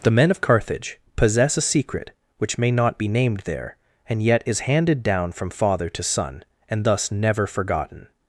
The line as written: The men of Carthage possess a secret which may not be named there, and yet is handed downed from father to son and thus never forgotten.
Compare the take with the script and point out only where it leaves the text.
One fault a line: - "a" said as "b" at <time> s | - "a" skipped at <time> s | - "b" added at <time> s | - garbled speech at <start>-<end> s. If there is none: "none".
- "downed" said as "down" at 5.0 s